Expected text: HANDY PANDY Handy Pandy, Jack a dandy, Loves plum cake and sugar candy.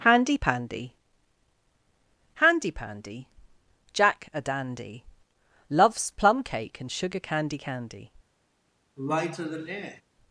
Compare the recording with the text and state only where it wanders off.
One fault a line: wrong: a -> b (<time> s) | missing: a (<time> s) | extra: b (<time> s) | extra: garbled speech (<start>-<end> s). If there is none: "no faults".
extra: candy (7.6 s)